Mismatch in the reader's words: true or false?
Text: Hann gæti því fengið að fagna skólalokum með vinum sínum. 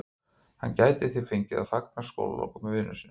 false